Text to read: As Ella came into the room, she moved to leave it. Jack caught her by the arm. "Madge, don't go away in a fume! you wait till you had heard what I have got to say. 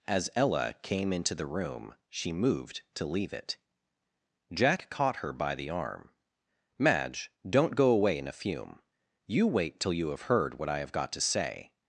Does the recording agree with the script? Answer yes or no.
no